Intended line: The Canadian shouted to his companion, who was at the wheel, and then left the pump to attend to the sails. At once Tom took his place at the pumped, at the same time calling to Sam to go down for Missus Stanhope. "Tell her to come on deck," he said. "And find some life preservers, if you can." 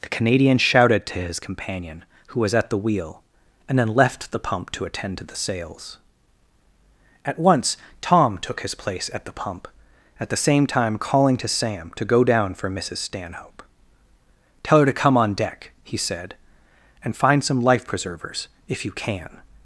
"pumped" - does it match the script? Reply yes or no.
no